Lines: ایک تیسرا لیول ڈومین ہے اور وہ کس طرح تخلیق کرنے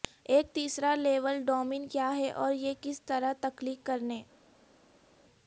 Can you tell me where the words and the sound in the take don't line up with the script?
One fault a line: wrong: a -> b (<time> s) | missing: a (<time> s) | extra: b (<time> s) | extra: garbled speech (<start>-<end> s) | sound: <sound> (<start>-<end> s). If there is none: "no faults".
extra: کیا (1.9 s)
wrong: وہ -> یہ (2.5 s)